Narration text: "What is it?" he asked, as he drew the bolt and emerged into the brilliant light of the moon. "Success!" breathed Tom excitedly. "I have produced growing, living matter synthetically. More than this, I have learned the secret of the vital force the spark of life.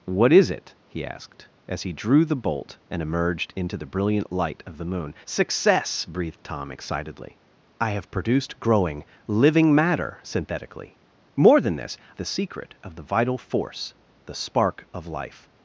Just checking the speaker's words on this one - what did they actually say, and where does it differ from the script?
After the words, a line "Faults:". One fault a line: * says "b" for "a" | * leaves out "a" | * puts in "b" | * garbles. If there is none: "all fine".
"What is it?" he asked, as he drew the bolt and emerged into the brilliant light of the moon. "Success!" breathed Tom excitedly. "I have produced growing, living matter synthetically. More than this, the secret of the vital force the spark of life.
Faults:
* leaves out "I have learned"